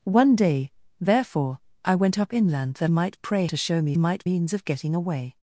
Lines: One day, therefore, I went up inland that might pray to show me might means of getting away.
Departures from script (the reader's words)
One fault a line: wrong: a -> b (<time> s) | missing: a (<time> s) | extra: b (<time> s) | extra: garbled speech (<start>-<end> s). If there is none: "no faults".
no faults